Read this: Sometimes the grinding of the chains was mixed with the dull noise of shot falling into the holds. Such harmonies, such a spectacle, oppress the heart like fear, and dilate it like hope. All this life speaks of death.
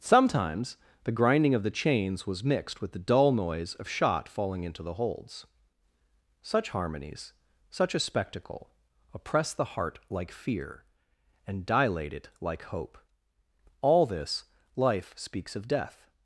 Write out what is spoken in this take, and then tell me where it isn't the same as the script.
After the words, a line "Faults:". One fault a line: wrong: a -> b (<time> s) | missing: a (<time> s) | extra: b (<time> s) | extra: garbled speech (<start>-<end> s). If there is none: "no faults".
Sometimes the grinding of the chains was mixed with the dull noise of shot falling into the holds. Such harmonies, such a spectacle, oppress the heart like fear, and dilate it like hope. All this life speaks of death.
Faults:
no faults